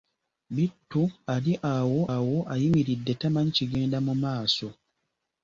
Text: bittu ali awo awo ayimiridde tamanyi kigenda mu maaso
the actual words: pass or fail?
pass